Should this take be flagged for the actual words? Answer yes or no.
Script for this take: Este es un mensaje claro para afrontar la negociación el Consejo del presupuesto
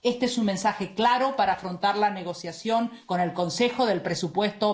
yes